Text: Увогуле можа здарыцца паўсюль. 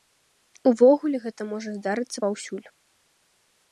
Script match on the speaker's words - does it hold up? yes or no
no